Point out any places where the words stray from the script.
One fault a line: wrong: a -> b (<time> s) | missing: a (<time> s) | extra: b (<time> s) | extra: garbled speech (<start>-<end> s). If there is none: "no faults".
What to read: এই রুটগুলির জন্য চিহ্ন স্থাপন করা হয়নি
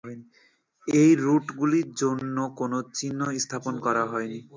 extra: কোন (2.6 s)